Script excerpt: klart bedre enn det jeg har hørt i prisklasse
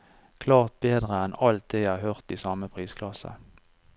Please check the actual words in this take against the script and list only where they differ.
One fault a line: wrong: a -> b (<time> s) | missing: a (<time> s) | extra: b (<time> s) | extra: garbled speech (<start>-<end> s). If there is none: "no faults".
extra: alt (1.5 s)
extra: samme (2.4 s)